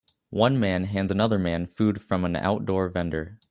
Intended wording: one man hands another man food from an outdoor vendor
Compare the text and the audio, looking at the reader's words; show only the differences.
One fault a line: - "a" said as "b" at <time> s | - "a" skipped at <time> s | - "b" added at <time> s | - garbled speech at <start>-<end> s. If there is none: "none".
none